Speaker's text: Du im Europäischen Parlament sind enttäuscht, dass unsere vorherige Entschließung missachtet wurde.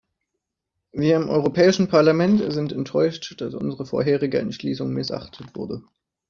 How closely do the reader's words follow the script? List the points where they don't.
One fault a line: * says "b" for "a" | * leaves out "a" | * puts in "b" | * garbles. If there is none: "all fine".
* says "Wir" for "Du"